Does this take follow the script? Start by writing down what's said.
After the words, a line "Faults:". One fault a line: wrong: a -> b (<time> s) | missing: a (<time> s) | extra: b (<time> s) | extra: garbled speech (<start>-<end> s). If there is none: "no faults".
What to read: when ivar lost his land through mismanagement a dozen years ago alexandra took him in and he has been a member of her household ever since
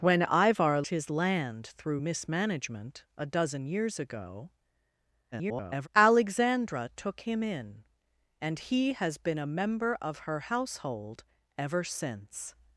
when ivar his land through mismanagement a dozen years ago [garbled] alexandra took him in and he has been a member of her household ever since
Faults:
missing: lost (0.8 s)
extra: garbled speech (5.3-5.9 s)